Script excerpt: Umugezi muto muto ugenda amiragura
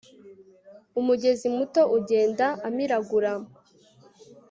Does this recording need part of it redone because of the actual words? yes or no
yes